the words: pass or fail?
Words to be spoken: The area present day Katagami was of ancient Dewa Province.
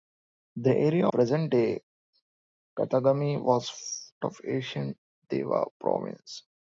pass